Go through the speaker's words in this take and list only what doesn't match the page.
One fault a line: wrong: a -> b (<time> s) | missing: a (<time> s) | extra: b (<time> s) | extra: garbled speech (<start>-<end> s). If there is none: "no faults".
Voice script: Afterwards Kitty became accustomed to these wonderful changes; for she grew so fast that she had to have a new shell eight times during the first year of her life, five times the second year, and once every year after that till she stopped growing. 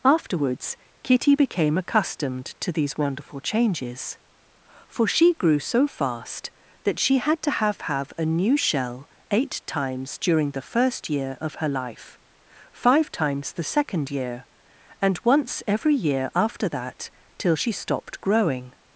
extra: have (7.8 s)